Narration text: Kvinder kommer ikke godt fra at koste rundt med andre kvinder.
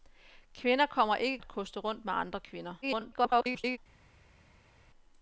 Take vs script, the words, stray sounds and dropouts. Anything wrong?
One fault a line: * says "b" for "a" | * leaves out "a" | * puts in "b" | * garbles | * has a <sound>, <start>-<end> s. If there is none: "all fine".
* leaves out "godt fra"
* garbles